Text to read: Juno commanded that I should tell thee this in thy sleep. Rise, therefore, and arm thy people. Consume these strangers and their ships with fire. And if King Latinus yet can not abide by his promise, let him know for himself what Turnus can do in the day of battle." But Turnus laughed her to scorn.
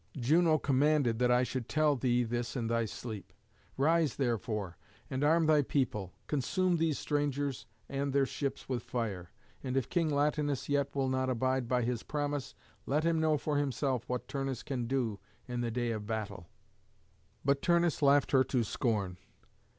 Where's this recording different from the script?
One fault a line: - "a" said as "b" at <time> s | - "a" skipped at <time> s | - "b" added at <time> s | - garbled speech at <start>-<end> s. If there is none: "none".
- "can" said as "will" at 11.0 s